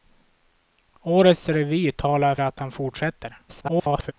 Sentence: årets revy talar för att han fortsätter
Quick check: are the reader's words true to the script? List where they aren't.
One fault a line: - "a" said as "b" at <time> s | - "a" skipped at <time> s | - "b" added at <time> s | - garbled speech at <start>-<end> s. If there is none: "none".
- "för" skipped at 2.4 s
- garbled speech at 3.5-4.1 s